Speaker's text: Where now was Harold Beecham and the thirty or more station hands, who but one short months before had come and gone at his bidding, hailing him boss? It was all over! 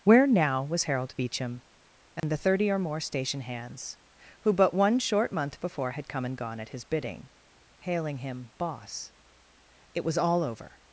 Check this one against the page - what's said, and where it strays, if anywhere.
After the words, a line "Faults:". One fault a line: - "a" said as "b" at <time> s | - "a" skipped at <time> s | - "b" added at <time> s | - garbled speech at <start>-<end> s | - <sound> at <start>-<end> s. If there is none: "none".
Where now was Harold Beecham and the thirty or more station hands, who but one short month before had come and gone at his bidding, hailing him boss? It was all over!
Faults:
- dropout at 2.2-2.2 s
- "months" said as "month" at 5.3 s